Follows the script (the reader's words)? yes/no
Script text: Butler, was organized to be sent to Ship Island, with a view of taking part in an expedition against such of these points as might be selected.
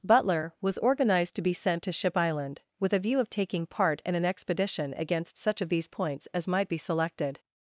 yes